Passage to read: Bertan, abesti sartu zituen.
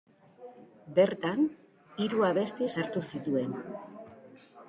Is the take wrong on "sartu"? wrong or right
right